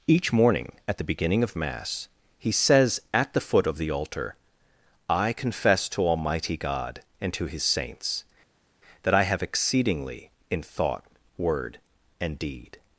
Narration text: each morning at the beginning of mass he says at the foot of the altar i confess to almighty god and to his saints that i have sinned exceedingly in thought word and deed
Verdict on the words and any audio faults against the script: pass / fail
fail